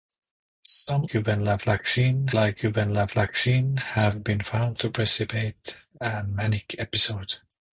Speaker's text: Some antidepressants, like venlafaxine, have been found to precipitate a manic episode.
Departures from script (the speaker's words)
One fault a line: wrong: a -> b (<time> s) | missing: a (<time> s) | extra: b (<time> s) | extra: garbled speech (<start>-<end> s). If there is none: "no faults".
wrong: antidepressants -> venlafaxine (1.1 s)